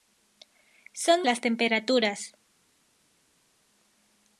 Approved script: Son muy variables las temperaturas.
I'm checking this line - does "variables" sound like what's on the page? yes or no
no